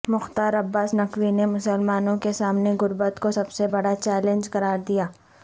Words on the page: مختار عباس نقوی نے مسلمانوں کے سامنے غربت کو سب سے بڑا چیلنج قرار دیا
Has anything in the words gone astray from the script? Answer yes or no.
no